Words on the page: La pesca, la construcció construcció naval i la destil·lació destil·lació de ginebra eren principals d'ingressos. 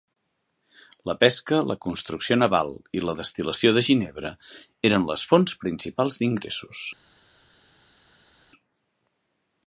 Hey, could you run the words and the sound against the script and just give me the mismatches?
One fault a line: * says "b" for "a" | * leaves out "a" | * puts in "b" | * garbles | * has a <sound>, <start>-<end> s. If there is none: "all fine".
* leaves out "construcció"
* leaves out "destil·lació"
* puts in "les fonts"